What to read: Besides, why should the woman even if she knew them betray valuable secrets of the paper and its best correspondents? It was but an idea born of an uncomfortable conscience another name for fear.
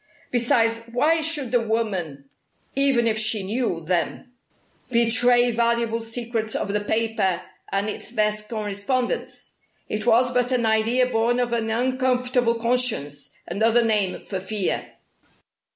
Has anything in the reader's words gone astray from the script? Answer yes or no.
no